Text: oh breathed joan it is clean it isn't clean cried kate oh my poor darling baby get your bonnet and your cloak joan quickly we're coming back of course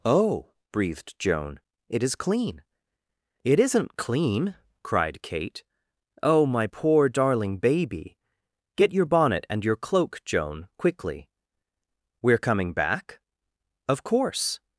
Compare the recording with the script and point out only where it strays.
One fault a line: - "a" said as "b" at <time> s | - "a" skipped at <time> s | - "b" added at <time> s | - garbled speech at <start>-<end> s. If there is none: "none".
none